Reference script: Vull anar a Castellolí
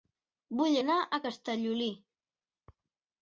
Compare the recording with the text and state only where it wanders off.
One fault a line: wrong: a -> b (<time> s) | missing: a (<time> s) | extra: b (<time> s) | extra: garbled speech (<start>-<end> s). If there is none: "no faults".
no faults